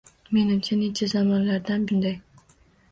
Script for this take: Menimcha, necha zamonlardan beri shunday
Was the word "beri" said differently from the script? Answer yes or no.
yes